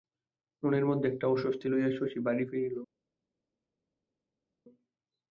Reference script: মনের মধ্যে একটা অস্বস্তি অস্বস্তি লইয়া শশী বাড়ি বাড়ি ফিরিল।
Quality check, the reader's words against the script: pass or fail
fail